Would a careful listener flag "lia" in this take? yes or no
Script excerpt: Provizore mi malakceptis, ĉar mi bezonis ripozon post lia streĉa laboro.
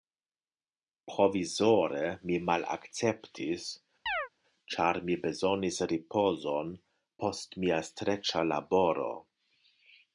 yes